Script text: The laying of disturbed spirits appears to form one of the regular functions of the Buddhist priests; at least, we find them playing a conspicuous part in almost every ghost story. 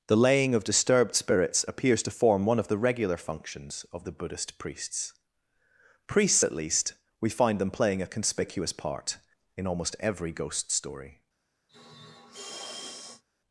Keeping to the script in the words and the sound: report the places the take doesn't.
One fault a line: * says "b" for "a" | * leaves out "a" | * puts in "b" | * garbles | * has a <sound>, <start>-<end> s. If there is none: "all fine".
* puts in "priests"
* has a sniff, 11.7-13.2 s